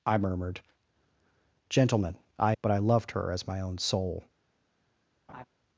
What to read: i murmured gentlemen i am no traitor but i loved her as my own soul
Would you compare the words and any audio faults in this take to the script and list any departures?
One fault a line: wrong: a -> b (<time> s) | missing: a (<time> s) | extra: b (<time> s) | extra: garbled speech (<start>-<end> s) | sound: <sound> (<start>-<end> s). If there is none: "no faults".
missing: am no traitor (2.5 s)
sound: laugh (5.3-5.4 s)